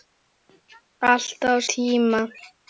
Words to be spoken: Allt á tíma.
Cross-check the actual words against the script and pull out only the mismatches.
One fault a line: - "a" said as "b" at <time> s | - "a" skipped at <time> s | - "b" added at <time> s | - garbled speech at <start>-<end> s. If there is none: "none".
none